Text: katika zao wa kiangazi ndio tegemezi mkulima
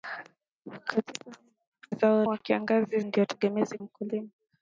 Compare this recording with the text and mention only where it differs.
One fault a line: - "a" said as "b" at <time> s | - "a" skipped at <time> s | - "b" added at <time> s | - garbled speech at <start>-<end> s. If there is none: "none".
none